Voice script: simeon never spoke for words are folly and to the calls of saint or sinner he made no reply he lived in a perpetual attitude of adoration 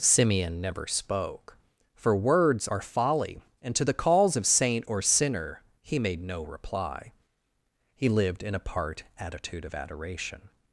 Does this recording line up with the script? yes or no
no